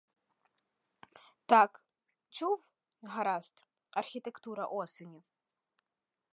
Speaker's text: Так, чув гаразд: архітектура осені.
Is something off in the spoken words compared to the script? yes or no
no